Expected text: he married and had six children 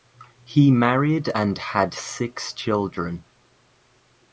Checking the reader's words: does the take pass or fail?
pass